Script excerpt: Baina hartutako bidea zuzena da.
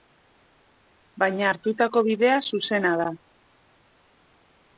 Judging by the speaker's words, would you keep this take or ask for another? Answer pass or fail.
pass